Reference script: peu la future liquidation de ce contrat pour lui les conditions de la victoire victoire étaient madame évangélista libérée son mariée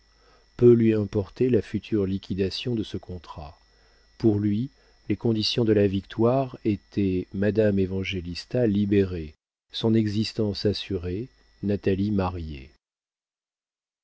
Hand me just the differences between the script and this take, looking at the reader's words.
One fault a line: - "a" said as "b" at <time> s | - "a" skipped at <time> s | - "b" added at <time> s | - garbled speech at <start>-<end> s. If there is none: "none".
- "lui importait" added at 0.7 s
- "victoire" skipped at 6.6 s
- "existence assurée natalie" added at 9.9 s